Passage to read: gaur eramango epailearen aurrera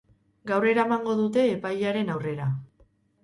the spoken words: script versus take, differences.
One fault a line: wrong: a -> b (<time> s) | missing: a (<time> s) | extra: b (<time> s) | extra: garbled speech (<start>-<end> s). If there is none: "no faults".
extra: dute (1.2 s)